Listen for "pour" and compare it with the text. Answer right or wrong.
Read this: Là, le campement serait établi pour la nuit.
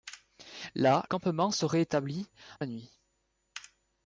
wrong